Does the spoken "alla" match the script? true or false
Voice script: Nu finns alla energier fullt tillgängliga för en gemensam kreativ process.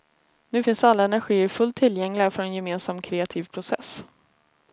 true